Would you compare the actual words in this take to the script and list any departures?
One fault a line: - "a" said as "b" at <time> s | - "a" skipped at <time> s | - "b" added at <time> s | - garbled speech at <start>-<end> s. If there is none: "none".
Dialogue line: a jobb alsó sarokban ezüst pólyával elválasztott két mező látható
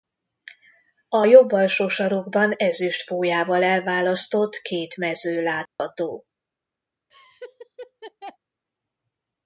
none